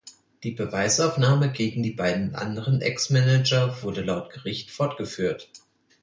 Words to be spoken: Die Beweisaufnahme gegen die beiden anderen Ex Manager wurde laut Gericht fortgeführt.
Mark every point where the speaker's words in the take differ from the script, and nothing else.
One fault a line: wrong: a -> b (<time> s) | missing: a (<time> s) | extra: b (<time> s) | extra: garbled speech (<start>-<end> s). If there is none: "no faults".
no faults